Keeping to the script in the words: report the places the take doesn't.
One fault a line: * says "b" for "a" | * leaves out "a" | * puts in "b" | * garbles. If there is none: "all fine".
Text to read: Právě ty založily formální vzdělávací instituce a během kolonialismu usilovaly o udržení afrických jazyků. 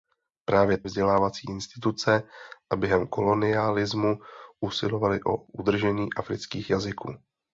* leaves out "ty založily formální"